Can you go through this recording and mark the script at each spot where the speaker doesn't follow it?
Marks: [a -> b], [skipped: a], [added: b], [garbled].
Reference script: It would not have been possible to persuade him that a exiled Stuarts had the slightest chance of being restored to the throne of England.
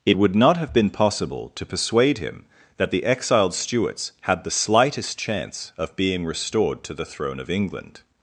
It would not have been possible to persuade him that [a -> the] exiled Stuarts had the slightest chance of being restored to the throne of England.